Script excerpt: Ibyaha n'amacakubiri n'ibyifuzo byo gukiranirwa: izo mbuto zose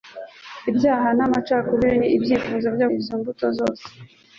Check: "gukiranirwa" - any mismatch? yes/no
yes